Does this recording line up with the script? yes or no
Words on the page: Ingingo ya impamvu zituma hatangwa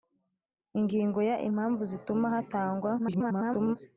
no